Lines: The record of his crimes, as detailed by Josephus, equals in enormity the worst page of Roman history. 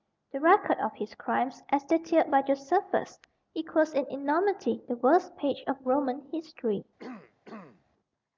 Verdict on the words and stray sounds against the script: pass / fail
fail